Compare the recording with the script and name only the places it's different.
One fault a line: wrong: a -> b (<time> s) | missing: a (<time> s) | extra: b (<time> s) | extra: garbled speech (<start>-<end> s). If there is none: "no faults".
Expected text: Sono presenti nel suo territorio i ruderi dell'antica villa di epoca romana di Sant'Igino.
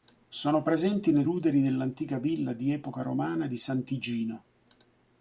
missing: suo territorio i (1.3 s)